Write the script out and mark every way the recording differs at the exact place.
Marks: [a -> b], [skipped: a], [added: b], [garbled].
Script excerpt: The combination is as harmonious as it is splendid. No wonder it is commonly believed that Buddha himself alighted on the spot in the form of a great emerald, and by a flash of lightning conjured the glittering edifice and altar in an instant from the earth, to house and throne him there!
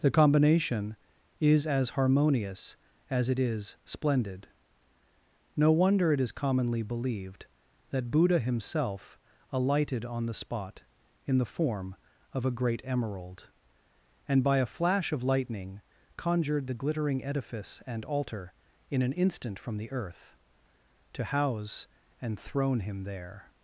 The combination is as harmonious as it is splendid. No wonder it is commonly believed that Buddha himself alighted on the spot in the form of a great emerald, and by a flash of lightning conjured the glittering edifice and altar in an instant from the earth, to house and throne him there!